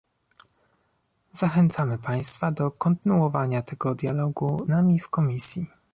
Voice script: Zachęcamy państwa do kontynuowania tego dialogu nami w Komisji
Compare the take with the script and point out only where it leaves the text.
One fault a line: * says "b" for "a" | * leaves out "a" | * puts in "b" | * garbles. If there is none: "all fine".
all fine